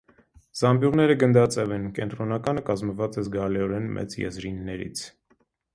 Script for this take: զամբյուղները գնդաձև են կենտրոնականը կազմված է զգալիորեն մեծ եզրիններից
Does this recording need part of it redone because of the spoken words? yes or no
no